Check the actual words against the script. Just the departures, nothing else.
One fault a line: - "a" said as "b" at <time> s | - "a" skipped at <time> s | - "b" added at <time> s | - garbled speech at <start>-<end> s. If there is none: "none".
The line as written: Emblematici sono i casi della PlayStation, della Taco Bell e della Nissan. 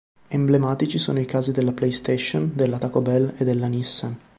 none